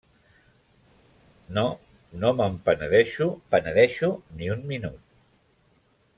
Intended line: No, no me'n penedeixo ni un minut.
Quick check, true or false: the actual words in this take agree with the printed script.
false